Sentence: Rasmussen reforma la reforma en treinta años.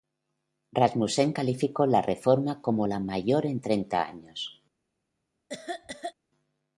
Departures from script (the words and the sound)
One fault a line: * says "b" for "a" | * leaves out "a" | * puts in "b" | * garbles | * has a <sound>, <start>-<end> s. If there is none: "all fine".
* puts in "calificó la"
* puts in "como"
* says "mayor" for "reforma"
* has a cough, 5.5-6.1 s